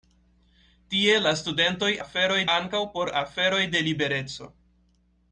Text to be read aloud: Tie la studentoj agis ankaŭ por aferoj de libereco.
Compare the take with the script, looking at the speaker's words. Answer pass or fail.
fail